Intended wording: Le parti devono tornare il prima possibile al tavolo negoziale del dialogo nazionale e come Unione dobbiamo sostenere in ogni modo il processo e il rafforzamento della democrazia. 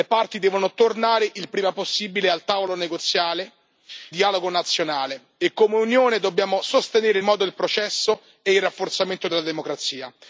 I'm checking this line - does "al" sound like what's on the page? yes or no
yes